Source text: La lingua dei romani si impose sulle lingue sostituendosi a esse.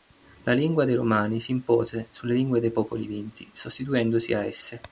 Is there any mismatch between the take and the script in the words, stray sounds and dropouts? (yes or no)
yes